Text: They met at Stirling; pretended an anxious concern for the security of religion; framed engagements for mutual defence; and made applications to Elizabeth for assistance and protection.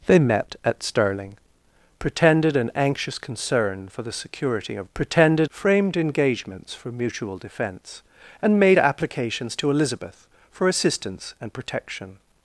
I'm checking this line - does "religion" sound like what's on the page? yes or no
no